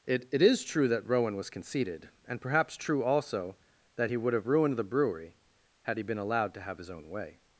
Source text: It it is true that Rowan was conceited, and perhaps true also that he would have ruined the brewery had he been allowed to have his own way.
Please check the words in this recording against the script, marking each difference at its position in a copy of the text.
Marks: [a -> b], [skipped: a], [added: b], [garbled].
It it is true that Rowan was conceited, and perhaps true also that he would have ruined the brewery had he been allowed to have his own way.